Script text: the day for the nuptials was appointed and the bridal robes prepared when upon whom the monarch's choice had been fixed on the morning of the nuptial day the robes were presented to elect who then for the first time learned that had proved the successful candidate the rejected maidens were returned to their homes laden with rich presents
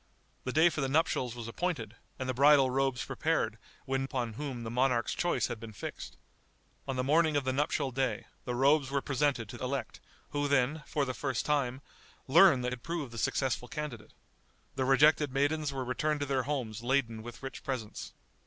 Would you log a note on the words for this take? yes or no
no